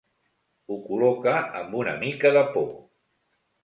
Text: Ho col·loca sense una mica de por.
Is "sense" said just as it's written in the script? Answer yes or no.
no